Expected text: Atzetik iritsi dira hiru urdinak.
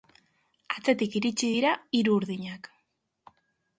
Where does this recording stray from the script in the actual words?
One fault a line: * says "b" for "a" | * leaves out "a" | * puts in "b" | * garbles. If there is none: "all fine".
all fine